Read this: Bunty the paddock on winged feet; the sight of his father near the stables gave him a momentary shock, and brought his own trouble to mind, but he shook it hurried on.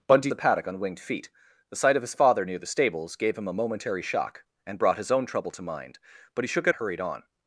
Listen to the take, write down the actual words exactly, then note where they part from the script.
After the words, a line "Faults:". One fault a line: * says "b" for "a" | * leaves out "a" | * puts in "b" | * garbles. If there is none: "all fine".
Bunty the paddock on winged feet; the sight of his father near the stables gave him a momentary shock, and brought his own trouble to mind, but he shook it hurried on.
Faults:
all fine